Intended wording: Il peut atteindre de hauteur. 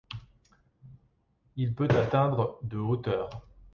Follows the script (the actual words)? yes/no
yes